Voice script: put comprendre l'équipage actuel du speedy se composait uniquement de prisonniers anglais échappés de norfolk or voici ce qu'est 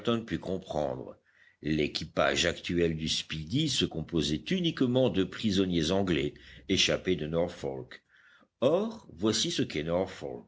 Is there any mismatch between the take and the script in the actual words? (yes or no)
no